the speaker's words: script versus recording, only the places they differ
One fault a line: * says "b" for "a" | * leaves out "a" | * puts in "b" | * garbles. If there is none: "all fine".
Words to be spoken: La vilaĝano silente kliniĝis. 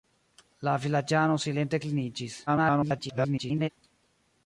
* garbles